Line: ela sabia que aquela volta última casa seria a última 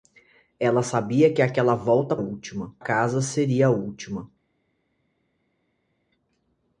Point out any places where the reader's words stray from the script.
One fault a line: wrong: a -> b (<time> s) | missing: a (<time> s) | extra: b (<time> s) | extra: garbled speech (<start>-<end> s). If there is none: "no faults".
no faults